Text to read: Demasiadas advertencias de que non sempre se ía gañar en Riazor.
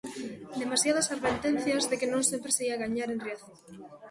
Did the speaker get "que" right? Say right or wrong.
right